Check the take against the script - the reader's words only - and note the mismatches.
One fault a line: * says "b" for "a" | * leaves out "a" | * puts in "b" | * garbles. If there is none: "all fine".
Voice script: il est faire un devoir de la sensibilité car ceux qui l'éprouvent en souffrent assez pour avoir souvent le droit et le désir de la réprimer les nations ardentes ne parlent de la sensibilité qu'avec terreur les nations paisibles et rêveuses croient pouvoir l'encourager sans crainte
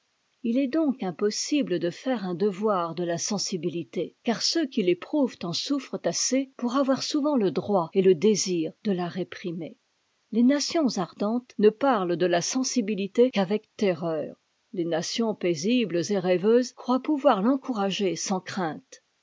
* puts in "donc impossible de"